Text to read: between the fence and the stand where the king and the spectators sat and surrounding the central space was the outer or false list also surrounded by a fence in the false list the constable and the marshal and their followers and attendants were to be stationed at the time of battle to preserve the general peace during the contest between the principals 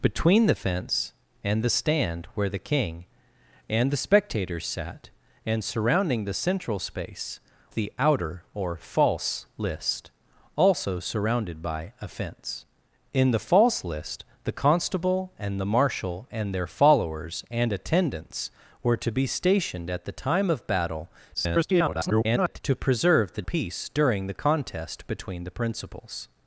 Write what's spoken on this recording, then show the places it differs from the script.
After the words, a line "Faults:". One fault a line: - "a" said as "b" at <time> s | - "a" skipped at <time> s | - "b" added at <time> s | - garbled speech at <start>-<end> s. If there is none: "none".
between the fence and the stand where the king and the spectators sat and surrounding the central space the outer or false list also surrounded by a fence in the false list the constable and the marshal and their followers and attendants were to be stationed at the time of battle [garbled] to preserve the peace during the contest between the principals
Faults:
- "was" skipped at 7.4 s
- garbled speech at 21.3-22.6 s
- "general" skipped at 23.4 s